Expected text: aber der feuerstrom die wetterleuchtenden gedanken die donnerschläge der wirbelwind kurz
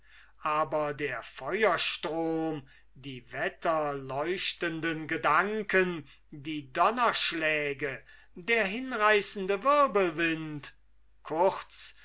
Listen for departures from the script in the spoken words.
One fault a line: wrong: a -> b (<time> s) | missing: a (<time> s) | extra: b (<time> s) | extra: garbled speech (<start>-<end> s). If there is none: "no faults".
extra: hinreißende (8.6 s)